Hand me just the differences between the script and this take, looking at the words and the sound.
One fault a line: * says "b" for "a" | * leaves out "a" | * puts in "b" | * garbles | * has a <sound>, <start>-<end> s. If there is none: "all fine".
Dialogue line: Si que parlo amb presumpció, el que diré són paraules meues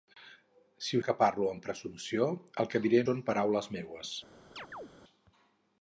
* has a chirp, 4.6-4.9 s